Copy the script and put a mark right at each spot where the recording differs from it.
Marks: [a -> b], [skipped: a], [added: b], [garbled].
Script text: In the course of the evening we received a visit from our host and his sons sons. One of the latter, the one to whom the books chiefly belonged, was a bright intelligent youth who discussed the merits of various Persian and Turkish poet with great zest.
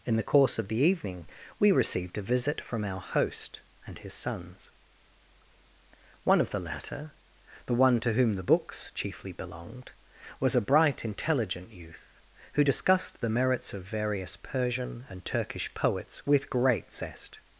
In the course of the evening we received a visit from our host and his sons [skipped: sons.] One of the latter, the one to whom the books chiefly belonged, was a bright intelligent youth who discussed the merits of various Persian and Turkish [poet -> poets] with great zest.